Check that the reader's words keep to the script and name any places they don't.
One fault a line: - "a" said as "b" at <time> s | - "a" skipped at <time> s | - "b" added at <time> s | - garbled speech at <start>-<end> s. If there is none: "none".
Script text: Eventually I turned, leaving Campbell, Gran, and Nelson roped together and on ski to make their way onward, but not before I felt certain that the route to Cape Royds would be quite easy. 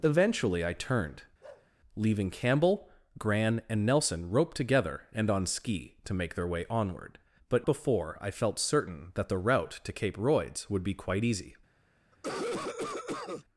- "not" skipped at 7.7 s